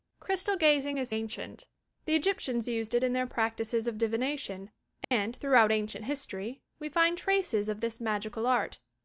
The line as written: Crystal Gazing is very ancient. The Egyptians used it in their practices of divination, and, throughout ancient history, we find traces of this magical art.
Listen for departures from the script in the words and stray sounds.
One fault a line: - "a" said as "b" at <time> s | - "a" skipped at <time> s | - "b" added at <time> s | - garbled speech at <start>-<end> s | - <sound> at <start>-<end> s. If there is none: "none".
- "very" skipped at 1.1 s
- dropout at 5.0-5.1 s